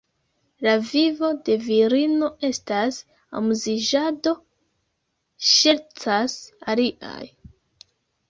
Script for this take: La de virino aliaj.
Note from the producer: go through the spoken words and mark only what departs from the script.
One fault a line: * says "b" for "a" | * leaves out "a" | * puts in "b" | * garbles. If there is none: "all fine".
* puts in "vivo"
* puts in "estas amuziĝado ŝercas"